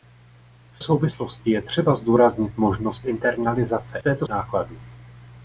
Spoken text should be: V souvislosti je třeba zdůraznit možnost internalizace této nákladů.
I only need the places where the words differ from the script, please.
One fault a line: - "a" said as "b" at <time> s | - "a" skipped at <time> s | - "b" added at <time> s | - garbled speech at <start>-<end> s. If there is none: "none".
none